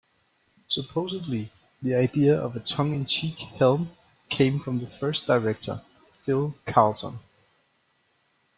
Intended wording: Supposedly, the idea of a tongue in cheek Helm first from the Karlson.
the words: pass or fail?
fail